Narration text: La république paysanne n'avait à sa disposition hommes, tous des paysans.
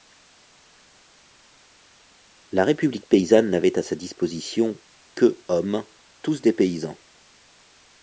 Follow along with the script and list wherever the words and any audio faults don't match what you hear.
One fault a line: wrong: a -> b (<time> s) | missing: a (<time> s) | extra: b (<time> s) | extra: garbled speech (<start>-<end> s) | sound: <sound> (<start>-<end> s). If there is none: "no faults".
extra: que (5.1 s)